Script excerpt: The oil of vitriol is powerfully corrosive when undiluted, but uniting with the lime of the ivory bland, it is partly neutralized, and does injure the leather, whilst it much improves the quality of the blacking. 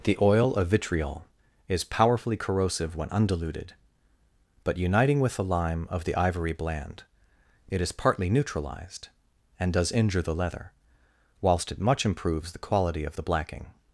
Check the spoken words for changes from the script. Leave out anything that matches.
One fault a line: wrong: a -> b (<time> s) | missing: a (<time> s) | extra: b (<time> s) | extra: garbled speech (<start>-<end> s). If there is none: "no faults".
no faults